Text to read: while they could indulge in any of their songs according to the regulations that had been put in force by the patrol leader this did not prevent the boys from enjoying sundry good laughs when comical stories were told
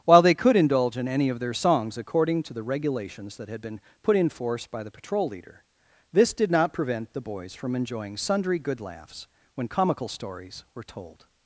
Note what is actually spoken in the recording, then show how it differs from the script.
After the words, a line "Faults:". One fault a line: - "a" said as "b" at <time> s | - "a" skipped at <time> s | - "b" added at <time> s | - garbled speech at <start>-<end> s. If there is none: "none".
while they could indulge in any of their songs according to the regulations that had been put in force by the patrol leader this did not prevent the boys from enjoying sundry good laughs when comical stories were told
Faults:
none